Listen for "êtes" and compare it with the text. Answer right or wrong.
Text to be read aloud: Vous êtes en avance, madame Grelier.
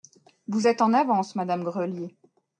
right